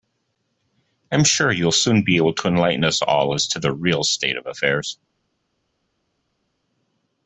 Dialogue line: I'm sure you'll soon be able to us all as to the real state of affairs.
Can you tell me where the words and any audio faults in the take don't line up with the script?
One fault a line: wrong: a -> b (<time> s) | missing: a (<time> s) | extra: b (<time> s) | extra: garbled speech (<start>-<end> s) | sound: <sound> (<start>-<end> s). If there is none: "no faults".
extra: enlighten (2.5 s)